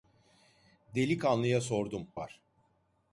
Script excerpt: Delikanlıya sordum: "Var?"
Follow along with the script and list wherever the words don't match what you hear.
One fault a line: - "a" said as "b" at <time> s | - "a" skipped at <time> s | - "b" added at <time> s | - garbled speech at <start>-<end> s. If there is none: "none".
none